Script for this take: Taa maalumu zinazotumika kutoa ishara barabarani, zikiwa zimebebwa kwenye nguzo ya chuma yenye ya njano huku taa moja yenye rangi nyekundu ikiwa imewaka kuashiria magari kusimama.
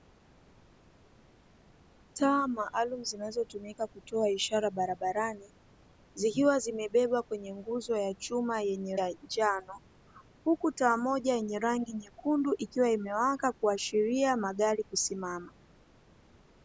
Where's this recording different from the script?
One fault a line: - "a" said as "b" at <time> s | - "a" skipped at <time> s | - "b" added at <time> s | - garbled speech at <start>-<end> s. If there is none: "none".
none